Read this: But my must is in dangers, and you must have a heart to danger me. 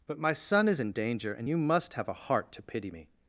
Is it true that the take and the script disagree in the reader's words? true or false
true